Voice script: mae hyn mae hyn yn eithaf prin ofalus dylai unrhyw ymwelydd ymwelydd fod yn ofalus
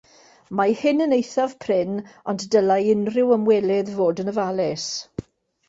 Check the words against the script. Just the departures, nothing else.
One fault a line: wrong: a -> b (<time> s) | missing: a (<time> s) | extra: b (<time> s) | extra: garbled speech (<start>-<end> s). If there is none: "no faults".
missing: mae hyn (1.0 s)
wrong: ofalus -> ond (2.3 s)
missing: ymwelydd (4.0 s)